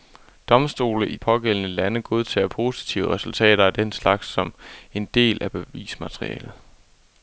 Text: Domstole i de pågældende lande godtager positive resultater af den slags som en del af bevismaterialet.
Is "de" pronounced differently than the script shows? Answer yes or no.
yes